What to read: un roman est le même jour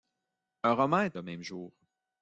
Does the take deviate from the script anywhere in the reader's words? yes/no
no